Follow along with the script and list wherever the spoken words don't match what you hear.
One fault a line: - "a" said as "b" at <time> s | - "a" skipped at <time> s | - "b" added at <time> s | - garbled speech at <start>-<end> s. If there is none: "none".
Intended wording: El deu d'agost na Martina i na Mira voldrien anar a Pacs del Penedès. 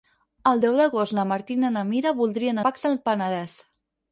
- "anar" skipped at 2.7 s